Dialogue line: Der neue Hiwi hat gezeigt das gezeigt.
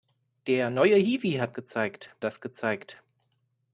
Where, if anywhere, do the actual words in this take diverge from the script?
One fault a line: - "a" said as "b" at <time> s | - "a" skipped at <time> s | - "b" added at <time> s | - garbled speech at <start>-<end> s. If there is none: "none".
none